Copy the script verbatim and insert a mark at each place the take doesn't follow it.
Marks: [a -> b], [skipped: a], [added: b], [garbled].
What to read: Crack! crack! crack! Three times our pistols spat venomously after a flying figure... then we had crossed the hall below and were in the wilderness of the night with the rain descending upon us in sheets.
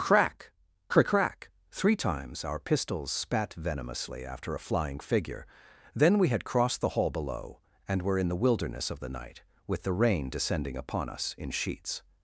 Crack! crack! crack! Three times our pistols spat venomously after a flying figure... then we had crossed the hall below and were in the wilderness of the night with the rain descending upon us in sheets.